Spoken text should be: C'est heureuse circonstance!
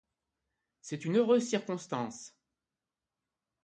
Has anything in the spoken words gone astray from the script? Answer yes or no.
yes